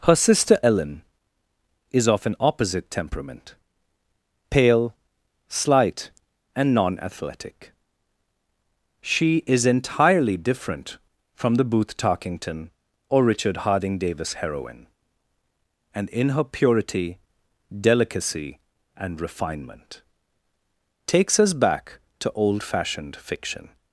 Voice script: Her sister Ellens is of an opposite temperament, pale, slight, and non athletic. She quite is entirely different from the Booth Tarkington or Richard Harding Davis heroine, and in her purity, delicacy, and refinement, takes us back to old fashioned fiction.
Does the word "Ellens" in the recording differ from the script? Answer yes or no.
yes